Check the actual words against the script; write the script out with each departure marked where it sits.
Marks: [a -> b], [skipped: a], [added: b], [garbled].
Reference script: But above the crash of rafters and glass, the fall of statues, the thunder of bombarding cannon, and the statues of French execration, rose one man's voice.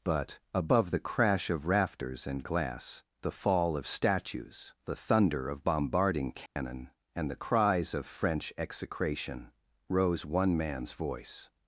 But above the crash of rafters and glass, the fall of statues, the thunder of bombarding cannon, and the [statues -> cries] of French execration, rose one man's voice.